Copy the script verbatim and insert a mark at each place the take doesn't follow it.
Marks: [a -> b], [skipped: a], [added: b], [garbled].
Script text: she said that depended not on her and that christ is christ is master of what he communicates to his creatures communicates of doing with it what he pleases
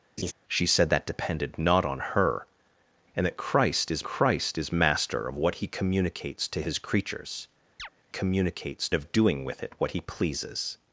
she said that depended not on her and that christ is christ is master of what he communicates to his creatures communicates of doing with it what he pleases